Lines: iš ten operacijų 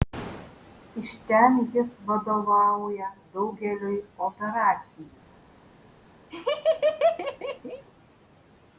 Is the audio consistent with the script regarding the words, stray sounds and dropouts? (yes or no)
no